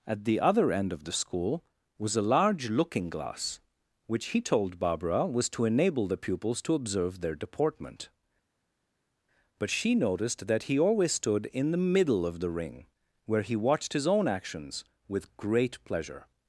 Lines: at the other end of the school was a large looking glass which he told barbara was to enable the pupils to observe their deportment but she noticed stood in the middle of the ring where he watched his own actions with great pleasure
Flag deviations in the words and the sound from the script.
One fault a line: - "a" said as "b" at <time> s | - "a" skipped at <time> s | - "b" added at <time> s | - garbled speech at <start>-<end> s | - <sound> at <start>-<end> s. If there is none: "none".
- "that he always" added at 10.5 s